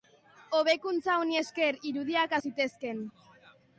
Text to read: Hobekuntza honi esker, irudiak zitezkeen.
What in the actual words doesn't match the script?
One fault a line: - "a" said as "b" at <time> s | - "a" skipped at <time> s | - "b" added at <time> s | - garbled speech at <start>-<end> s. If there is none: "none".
none